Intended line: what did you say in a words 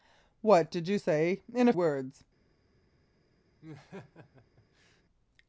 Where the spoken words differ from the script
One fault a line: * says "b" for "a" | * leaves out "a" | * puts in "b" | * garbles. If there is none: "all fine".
all fine